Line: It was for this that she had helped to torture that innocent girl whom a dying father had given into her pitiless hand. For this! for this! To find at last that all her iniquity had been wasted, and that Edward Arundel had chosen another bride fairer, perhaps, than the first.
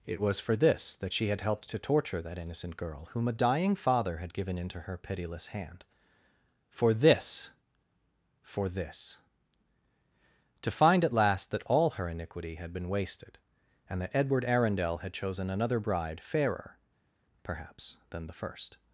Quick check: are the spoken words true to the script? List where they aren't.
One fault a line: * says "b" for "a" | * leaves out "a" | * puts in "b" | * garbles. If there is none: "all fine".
all fine